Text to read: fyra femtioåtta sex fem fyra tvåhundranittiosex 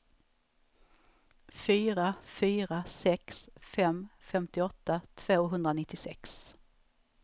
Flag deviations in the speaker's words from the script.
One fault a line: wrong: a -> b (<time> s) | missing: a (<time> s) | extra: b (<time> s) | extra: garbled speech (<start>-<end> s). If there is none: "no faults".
wrong: femtioåtta -> fyra (2.2 s)
wrong: fyra -> femtioåtta (4.2 s)